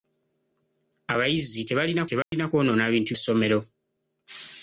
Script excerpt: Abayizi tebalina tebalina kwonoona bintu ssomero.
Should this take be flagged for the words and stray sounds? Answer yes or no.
yes